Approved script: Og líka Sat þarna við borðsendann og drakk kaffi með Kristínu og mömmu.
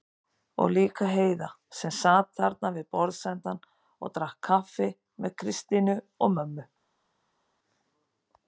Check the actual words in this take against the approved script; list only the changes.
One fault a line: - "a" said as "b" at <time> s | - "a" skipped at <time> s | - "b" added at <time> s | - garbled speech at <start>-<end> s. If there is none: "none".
- "Heiða sem" added at 1.1 s